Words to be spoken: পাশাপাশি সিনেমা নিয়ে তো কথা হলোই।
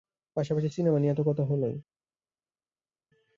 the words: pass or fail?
pass